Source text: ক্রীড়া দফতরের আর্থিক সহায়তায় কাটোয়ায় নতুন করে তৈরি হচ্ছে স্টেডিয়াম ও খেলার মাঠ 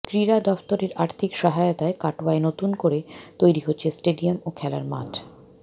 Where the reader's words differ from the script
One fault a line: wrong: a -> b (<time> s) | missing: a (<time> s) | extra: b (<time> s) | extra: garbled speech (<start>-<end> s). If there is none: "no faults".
no faults